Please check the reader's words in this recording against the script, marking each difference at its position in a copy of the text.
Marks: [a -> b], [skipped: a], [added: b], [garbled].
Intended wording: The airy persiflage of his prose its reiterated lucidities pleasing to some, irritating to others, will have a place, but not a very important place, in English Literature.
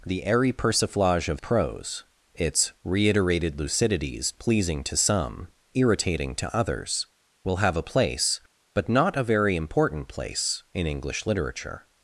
The airy persiflage of [skipped: his] prose its reiterated lucidities pleasing to some, irritating to others, will have a place, but not a very important place, in English Literature.